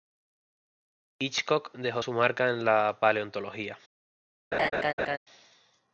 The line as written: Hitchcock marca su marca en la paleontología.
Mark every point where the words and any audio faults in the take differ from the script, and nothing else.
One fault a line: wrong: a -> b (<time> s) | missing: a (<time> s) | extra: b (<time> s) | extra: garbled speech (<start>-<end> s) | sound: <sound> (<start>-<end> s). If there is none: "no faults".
wrong: marca -> dejó (1.7 s)
sound: laugh (4.5-5.2 s)